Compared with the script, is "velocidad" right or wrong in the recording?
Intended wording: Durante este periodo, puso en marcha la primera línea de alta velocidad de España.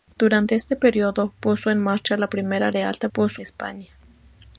wrong